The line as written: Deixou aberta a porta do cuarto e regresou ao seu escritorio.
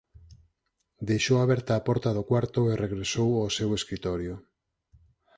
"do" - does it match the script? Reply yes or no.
yes